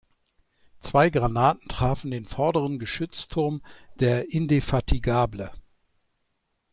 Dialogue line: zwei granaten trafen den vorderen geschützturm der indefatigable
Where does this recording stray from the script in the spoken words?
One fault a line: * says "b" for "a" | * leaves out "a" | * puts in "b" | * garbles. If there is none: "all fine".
all fine